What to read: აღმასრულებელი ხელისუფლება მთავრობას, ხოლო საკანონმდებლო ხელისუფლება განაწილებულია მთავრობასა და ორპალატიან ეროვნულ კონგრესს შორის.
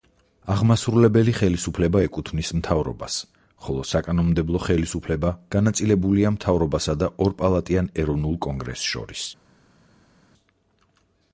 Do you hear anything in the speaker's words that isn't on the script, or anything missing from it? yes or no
yes